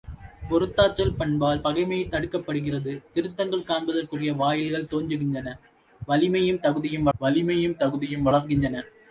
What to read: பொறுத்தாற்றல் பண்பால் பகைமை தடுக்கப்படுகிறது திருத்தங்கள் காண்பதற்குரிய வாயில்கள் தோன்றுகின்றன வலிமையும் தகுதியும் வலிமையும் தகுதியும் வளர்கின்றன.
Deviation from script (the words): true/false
false